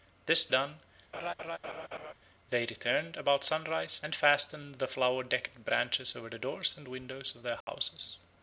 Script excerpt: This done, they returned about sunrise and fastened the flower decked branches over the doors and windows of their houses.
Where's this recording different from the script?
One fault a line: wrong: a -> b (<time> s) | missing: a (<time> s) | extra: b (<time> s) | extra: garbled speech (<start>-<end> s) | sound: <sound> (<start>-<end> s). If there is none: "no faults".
sound: laugh (1.1-2.1 s)
sound: dropout (7.6-7.7 s)